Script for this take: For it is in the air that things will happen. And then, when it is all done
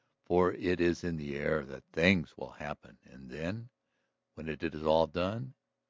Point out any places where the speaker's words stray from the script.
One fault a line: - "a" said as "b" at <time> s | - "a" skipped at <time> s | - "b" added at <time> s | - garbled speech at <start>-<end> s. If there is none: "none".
none